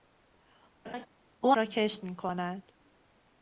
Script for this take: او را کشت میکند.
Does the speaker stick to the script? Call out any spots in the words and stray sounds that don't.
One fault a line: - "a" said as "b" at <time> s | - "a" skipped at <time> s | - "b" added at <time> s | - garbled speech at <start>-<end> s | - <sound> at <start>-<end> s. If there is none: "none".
- laugh at 0.8-1.1 s